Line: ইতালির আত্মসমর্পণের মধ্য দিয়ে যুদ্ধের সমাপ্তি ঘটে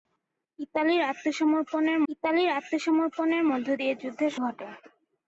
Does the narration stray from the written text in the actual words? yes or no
yes